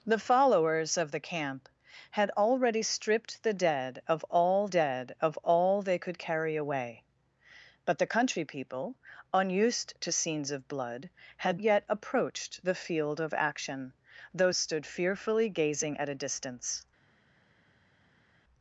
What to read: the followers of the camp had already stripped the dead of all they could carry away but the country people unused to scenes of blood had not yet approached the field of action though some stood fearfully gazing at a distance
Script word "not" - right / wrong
wrong